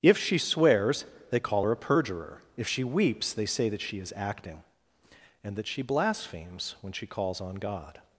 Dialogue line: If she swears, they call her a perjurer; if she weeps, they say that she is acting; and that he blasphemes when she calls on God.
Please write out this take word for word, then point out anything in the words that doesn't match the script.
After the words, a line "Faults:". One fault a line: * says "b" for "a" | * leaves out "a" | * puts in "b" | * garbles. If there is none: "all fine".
If she swears, they call her a perjurer; if she weeps, they say that she is acting; and that she blasphemes when she calls on God.
Faults:
* says "she" for "he"